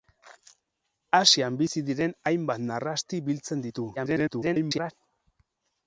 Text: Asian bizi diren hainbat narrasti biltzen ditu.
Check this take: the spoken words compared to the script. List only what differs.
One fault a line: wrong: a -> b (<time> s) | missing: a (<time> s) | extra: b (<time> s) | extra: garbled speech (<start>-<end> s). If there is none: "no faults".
extra: garbled speech (4.0-4.9 s)